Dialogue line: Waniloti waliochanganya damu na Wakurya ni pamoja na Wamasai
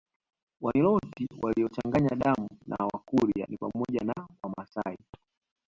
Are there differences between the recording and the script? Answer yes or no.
no